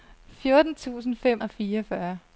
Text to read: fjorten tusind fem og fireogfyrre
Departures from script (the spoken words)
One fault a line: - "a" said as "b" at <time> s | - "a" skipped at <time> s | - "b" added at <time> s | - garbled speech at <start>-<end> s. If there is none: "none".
none